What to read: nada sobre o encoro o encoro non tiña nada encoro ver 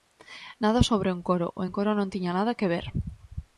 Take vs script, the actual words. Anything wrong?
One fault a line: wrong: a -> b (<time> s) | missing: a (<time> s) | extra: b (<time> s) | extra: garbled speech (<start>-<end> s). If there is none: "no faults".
wrong: encoro -> que (2.6 s)